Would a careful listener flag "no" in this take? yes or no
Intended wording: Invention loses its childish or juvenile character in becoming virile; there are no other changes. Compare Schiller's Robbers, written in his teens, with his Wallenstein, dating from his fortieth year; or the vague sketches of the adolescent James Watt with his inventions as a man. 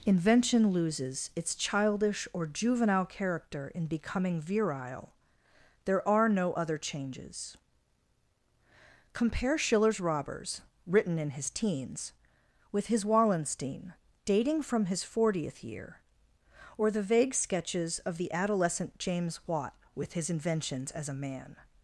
no